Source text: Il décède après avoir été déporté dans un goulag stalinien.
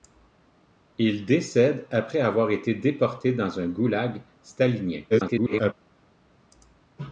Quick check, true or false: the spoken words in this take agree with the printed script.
false